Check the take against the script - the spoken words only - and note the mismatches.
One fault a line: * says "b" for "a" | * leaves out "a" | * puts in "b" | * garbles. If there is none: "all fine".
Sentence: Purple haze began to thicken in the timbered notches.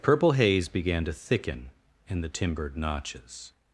all fine